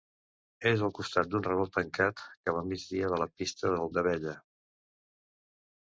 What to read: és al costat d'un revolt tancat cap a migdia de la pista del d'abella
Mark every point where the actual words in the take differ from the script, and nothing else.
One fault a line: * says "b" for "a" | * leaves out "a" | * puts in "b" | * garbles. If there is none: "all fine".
all fine